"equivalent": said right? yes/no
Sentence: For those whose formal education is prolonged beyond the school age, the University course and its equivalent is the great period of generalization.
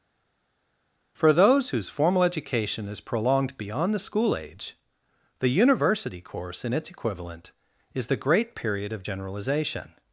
yes